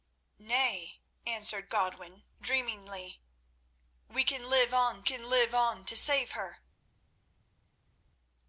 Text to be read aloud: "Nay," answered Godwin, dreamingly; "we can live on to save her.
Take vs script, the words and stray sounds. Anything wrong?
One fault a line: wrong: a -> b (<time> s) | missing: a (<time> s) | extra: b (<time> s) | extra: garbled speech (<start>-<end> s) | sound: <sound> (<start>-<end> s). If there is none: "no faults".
extra: can live on (5.0 s)